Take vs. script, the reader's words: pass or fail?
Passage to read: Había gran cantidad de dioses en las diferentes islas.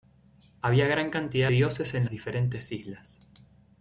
fail